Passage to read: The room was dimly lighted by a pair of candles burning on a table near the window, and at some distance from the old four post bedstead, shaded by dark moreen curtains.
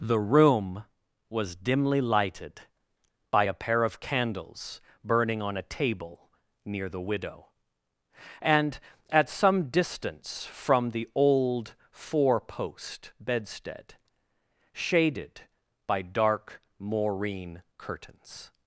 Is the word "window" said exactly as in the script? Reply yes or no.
no